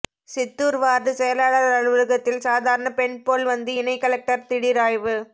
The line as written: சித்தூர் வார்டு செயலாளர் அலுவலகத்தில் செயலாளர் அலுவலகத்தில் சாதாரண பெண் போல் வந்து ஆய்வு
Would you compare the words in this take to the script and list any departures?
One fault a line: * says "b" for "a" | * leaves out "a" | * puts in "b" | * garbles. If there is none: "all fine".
* leaves out "செயலாளர் அலுவலகத்தில்"
* puts in "இணை கலெக்டர் திடீர்"